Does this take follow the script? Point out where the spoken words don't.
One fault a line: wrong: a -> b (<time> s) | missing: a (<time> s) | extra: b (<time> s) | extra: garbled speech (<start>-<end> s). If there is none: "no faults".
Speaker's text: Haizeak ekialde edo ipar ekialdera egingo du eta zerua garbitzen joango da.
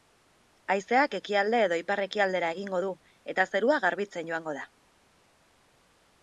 no faults